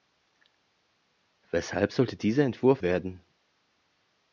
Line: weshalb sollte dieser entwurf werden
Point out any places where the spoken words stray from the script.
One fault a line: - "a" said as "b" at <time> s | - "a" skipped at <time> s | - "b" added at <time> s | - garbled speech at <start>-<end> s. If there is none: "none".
none